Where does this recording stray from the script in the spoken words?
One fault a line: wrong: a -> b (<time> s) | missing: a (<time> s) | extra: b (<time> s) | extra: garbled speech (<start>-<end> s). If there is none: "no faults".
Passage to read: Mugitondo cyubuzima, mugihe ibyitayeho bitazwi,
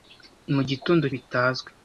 missing: cyubuzima mugihe ibyitayeho (1.1 s)